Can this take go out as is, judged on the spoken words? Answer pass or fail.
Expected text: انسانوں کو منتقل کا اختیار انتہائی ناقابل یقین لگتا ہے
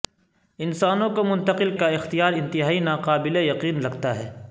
pass